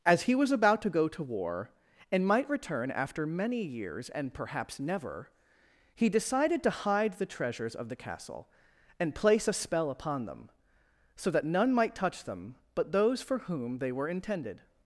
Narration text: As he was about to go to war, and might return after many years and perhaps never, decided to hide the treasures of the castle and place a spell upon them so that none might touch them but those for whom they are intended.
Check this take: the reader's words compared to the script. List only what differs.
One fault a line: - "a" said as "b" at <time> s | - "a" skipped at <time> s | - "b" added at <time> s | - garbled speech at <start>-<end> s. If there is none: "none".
- "he" added at 6.0 s
- "are" said as "were" at 13.9 s